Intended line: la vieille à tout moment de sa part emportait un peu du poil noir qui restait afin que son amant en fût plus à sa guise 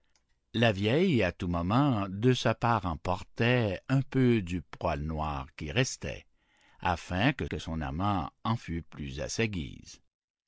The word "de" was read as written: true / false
true